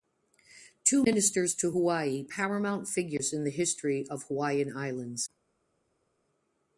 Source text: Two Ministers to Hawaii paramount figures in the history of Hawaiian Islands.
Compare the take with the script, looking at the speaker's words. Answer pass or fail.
pass